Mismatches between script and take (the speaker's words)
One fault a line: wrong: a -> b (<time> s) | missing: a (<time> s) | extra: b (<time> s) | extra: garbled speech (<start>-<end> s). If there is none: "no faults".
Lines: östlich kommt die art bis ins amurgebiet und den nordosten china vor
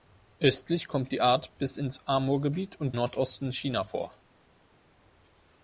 missing: den (3.0 s)